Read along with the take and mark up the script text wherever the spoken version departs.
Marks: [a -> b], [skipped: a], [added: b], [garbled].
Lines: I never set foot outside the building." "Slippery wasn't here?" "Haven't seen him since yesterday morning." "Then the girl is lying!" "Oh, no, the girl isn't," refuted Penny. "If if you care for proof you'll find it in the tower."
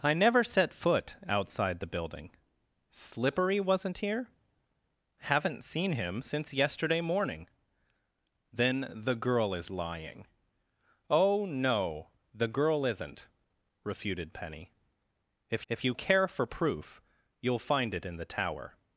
I never set foot outside the building." "Slippery wasn't here?" "Haven't seen him since yesterday morning." "Then the girl is lying!" "Oh, no, the girl isn't," refuted Penny. "If if you care for proof you'll find it in the tower."